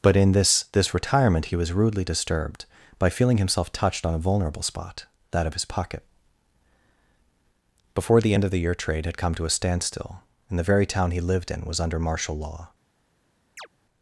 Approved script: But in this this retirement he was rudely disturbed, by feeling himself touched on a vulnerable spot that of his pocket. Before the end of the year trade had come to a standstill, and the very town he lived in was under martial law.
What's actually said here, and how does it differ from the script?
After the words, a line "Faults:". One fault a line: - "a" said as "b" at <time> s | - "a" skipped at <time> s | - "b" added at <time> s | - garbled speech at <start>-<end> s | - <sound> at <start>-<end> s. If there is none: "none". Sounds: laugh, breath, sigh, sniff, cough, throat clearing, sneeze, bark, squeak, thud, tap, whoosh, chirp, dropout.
But in this this retirement he was rudely disturbed, by feeling himself touched on a vulnerable spot that of his pocket. Before the end of the year trade had come to a standstill, and the very town he lived in was under martial law.
Faults:
- chirp at 13.6-13.7 s